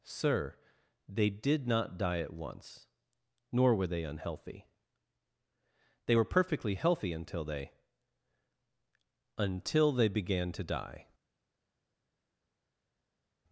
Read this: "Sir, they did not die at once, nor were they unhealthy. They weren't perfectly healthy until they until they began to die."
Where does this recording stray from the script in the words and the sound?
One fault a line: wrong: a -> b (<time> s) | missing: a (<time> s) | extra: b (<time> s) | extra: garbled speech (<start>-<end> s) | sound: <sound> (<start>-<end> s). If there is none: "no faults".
wrong: weren't -> were (6.1 s)